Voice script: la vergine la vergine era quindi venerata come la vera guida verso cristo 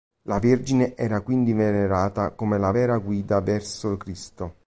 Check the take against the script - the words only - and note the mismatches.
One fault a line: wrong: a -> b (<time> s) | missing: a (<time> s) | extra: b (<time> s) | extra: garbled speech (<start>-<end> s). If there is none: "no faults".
missing: la vergine (0.9 s)